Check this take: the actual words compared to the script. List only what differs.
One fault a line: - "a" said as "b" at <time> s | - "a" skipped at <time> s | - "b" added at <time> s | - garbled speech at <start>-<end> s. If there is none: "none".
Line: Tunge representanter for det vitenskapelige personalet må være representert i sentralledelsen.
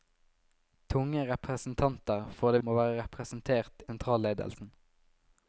- "vitenskapelige personalet" skipped at 2.6 s
- "i" skipped at 3.8 s